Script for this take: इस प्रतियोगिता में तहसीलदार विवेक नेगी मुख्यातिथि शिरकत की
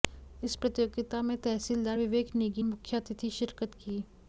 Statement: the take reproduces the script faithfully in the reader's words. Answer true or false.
true